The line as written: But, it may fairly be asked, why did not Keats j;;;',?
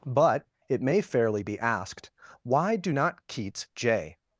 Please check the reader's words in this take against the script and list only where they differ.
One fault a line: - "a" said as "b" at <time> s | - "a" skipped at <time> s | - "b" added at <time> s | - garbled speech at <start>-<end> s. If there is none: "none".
- "did" said as "do" at 2.8 s